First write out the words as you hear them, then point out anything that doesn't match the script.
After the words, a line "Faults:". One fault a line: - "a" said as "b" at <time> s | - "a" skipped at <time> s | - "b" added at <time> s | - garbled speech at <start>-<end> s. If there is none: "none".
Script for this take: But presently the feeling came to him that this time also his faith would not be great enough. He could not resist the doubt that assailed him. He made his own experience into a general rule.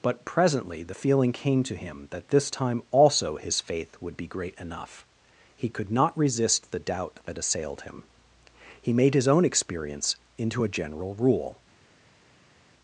But presently the feeling came to him that this time also his faith would be great enough. He could not resist the doubt that assailed him. He made his own experience into a general rule.
Faults:
- "not" skipped at 4.1 s